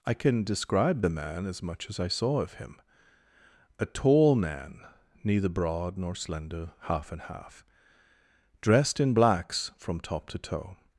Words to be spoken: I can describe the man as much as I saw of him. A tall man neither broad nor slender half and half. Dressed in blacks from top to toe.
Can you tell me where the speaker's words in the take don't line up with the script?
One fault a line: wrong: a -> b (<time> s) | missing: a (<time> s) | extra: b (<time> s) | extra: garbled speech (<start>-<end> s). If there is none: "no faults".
no faults